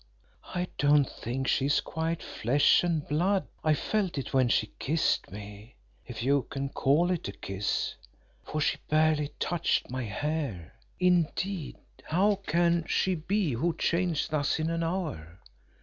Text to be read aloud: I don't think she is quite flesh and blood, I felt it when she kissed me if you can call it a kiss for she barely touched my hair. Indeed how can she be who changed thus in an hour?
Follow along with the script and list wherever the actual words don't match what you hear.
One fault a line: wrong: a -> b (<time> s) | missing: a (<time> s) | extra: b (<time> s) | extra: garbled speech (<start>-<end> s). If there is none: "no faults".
no faults